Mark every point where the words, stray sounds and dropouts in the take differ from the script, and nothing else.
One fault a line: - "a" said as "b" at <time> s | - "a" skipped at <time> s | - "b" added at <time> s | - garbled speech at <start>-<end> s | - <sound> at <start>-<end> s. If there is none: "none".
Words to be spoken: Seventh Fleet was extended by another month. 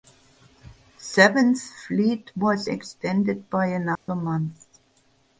- dropout at 4.0-4.1 s